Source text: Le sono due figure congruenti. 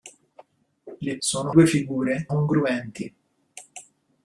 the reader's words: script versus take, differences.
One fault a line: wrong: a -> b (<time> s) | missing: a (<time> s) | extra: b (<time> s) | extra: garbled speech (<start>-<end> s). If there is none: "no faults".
no faults